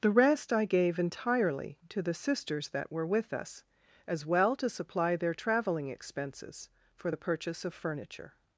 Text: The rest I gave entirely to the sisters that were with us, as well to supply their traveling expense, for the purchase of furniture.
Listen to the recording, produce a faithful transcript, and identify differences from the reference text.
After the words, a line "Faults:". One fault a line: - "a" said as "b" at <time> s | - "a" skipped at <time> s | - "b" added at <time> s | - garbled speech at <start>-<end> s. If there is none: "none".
The rest I gave entirely to the sisters that were with us, as well to supply their traveling expenses, for the purchase of furniture.
Faults:
- "expense" said as "expenses" at 5.9 s